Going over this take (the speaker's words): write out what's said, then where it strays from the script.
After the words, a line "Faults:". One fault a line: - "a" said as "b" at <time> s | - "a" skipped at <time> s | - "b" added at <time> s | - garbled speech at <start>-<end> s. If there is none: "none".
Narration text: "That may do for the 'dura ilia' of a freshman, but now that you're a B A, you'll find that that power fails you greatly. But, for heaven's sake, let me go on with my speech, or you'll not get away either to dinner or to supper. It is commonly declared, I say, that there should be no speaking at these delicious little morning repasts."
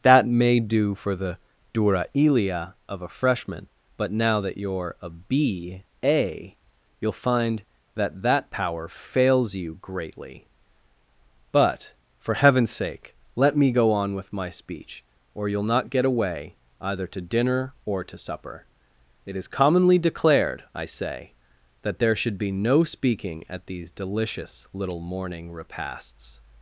"That may do for the 'dura ilia' of a freshman, but now that you're a B A, you'll find that that power fails you greatly. But, for heaven's sake, let me go on with my speech, or you'll not get away either to dinner or to supper. It is commonly declared, I say, that there should be no speaking at these delicious little morning repasts."
Faults:
none